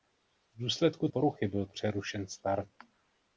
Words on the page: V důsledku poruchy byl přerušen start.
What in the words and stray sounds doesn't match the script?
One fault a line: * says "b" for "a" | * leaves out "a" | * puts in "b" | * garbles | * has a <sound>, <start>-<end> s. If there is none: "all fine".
all fine